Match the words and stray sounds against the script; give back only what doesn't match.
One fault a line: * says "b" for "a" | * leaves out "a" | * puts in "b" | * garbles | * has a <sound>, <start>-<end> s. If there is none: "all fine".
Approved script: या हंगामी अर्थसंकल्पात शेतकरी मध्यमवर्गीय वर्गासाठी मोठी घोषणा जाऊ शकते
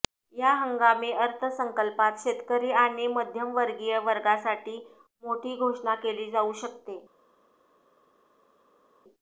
* puts in "आणि"
* puts in "केली"